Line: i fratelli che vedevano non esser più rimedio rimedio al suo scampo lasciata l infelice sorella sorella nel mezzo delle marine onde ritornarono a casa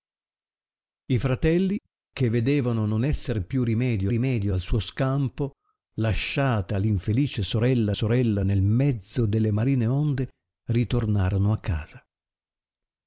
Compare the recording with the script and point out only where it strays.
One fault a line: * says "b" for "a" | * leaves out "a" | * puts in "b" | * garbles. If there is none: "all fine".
all fine